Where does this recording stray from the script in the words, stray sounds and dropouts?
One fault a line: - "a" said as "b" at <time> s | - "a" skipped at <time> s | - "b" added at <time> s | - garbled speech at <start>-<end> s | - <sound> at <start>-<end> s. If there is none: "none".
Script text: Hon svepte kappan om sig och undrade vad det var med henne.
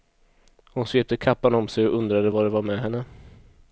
none